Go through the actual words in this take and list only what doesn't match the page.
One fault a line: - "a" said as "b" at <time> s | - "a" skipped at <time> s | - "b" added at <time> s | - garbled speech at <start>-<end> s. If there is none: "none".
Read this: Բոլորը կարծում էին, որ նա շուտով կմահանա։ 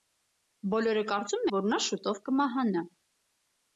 - "էին" skipped at 1.4 s